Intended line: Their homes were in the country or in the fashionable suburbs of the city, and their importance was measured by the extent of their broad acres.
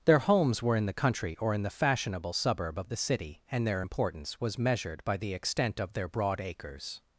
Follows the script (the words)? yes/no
no